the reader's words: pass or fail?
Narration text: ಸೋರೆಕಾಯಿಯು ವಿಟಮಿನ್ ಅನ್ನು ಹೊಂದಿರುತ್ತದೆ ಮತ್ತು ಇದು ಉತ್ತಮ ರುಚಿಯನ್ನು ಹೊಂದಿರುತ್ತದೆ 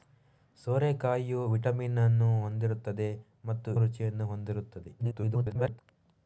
fail